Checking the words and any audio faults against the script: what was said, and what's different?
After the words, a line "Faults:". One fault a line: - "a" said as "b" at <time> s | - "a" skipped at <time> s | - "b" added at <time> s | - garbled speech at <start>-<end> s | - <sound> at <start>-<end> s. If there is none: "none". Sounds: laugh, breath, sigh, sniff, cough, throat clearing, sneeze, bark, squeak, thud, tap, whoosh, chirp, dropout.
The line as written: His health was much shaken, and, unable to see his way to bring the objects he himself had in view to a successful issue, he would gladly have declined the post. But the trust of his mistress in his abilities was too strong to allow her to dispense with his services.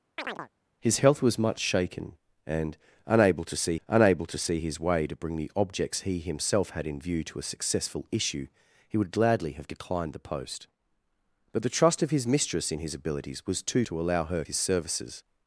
His health was much shaken, and, unable to see unable to see his way to bring the objects he himself had in view to a successful issue, he would gladly have declined the post. But the trust of his mistress in his abilities was too to allow her his services.
Faults:
- chirp at 0.2-0.5 s
- "unable to see" added at 3.9 s
- "strong" skipped at 13.8 s
- "to dispense with" skipped at 14.4 s